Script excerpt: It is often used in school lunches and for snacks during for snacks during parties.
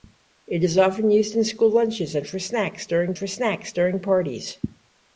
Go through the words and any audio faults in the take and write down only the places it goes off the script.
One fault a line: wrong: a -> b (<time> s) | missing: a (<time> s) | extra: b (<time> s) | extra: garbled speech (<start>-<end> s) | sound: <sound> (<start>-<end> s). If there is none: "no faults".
no faults